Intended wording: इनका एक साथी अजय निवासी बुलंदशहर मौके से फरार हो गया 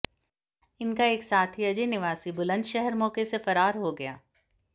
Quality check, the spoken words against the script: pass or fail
pass